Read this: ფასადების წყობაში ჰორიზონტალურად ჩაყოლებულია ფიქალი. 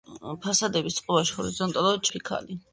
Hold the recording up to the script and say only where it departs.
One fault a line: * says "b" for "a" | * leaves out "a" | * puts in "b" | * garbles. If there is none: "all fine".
* leaves out "ჩაყოლებულია"